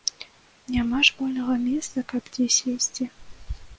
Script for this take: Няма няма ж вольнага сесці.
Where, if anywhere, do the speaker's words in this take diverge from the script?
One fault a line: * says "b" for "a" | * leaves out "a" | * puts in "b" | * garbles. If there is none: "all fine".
* leaves out "няма"
* puts in "месца каб дзе"